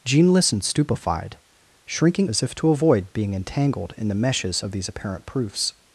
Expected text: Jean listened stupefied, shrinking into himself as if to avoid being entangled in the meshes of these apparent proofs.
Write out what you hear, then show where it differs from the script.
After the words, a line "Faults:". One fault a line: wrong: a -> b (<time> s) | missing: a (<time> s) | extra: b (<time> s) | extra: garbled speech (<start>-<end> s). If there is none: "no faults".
Jean listened stupefied, shrinking as if to avoid being entangled in the meshes of these apparent proofs.
Faults:
missing: into himself (2.3 s)